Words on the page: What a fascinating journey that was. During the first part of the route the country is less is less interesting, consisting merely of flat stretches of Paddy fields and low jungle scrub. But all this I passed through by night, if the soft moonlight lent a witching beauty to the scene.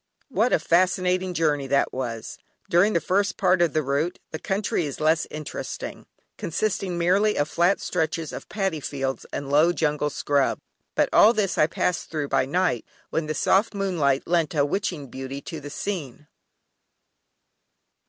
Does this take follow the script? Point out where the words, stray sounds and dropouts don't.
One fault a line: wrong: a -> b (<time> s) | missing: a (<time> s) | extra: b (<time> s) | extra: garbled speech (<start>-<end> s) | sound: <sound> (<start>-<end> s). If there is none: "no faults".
missing: is less (5.3 s)
wrong: if -> when (13.1 s)